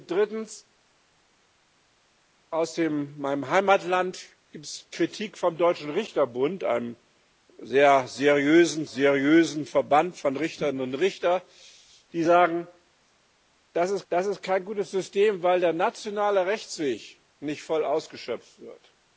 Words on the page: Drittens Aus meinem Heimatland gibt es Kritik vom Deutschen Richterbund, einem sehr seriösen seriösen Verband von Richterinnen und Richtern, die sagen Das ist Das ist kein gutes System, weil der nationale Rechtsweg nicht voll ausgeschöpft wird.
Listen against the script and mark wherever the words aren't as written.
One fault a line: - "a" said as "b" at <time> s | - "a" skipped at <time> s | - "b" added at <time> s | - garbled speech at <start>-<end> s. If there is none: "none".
none